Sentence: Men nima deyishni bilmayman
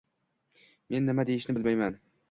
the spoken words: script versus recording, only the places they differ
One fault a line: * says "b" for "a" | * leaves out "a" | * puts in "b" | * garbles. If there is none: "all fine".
all fine